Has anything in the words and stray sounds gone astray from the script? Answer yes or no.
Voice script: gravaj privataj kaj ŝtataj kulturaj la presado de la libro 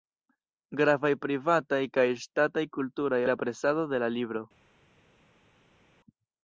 no